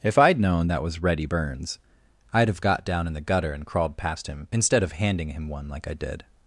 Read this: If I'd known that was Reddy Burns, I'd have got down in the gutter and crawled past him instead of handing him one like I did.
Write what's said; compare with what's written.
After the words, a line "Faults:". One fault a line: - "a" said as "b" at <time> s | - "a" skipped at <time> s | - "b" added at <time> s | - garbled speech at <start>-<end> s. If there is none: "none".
If I'd known that was Reddy Burns, I'd have got down in the gutter and crawled past him instead of handing him one like I did.
Faults:
none